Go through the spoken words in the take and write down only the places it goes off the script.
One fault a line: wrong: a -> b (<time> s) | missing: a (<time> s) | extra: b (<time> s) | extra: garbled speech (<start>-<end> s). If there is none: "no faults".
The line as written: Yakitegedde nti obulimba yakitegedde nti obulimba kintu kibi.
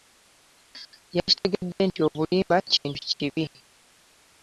missing: yakitegedde nti obulimba (2.6 s)